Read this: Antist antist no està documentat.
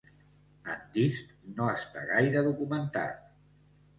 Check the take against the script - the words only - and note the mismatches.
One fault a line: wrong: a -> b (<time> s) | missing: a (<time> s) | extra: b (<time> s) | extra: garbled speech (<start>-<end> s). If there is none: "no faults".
missing: antist (1.4 s)
extra: gaire (2.1 s)